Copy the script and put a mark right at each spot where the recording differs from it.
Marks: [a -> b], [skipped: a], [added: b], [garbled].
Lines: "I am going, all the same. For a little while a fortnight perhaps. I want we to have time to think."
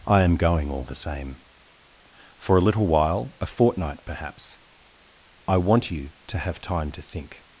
"I am going, all the same. For a little while a fortnight perhaps. I want [we -> you] to have time to think."